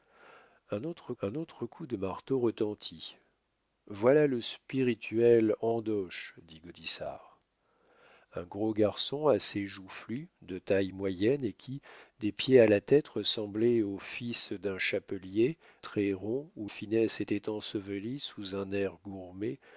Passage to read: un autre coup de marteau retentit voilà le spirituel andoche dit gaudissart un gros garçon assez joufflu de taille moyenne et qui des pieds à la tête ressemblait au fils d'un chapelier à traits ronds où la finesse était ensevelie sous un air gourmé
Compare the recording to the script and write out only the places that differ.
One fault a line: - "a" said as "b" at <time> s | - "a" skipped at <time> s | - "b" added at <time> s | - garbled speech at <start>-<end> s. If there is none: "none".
- "un autre" added at 1.2 s
- "à" skipped at 15.6 s
- "la" skipped at 16.7 s